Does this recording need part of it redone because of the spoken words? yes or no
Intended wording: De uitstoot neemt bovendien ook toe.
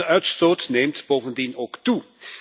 no